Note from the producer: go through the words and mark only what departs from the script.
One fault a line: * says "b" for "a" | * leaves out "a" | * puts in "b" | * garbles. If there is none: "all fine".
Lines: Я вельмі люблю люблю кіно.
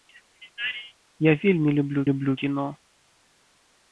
all fine